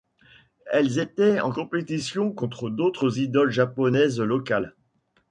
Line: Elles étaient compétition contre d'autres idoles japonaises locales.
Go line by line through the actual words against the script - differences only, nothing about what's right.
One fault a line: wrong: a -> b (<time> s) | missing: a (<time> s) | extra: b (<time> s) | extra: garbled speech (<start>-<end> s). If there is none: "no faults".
extra: en (1.4 s)